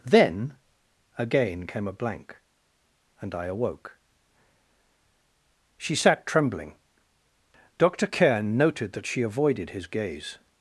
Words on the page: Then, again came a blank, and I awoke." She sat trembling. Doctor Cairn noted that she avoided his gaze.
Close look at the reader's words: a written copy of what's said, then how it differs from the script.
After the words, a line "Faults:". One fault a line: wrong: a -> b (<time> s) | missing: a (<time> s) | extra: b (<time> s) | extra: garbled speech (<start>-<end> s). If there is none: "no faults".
Then, again came a blank, and I awoke." She sat trembling. Doctor Cairn noted that she avoided his gaze.
Faults:
no faults